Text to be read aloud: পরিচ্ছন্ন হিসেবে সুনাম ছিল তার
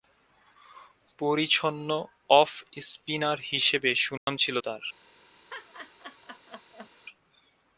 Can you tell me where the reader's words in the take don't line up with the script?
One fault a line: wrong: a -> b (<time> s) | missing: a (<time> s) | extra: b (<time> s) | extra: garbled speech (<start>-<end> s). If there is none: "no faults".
extra: অফ স্পিনার (2.3 s)